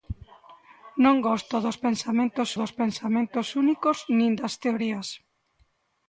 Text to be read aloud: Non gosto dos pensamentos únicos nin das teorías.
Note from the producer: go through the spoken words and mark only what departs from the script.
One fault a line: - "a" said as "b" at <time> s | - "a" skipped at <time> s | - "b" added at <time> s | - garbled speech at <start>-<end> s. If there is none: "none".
- "dos pensamentos" added at 2.6 s